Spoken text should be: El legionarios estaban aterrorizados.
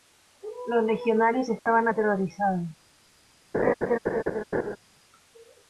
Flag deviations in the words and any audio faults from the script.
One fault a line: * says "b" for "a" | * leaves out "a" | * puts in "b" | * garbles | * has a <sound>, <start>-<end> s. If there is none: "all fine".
* says "Los" for "El"
* has a dropout, 1.6-1.7 s
* has a laugh, 3.5-4.8 s